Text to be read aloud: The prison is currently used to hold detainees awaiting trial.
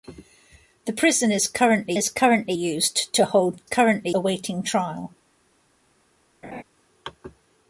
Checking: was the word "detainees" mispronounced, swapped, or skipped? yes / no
yes